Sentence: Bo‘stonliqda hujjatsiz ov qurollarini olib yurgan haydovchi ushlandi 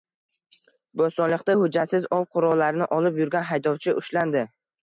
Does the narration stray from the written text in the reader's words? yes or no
no